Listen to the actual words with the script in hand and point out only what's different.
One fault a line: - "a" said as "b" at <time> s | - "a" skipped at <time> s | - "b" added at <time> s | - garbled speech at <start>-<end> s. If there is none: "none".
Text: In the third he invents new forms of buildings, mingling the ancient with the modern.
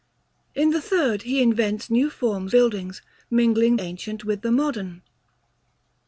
- "of" skipped at 2.5 s
- "the" skipped at 3.8 s